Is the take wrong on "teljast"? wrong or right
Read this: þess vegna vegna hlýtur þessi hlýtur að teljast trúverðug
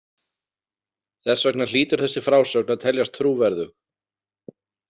right